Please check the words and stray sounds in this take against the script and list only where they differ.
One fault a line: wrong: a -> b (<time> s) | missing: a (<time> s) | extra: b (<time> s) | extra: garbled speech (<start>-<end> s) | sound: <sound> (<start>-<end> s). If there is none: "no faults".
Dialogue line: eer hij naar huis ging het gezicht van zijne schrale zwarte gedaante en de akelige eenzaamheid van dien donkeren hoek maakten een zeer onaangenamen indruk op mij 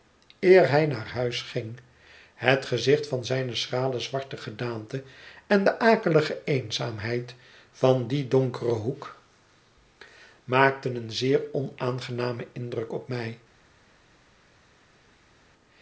no faults